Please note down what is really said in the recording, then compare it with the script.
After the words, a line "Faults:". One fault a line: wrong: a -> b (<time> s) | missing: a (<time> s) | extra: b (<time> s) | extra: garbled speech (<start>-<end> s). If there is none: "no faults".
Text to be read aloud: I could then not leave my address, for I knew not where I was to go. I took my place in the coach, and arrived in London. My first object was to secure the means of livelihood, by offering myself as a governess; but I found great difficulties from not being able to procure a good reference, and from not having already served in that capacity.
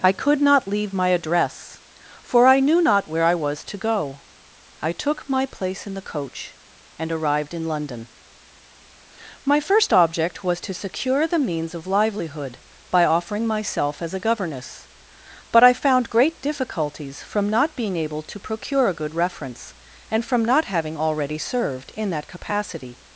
I could not leave my address, for I knew not where I was to go. I took my place in the coach, and arrived in London. My first object was to secure the means of livelihood, by offering myself as a governess; but I found great difficulties from not being able to procure a good reference, and from not having already served in that capacity.
Faults:
missing: then (0.4 s)